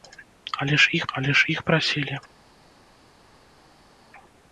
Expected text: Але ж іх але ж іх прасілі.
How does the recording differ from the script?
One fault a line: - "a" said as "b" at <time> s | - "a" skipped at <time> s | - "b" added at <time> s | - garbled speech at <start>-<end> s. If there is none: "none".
none